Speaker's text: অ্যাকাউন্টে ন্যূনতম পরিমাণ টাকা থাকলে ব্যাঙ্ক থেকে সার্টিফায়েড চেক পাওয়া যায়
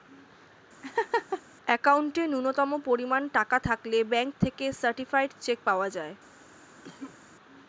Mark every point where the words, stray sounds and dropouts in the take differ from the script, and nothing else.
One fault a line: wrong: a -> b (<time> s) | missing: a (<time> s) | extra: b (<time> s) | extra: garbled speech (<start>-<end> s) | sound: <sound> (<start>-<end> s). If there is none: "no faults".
sound: laugh (0.8-1.4 s)
sound: cough (6.8-7.2 s)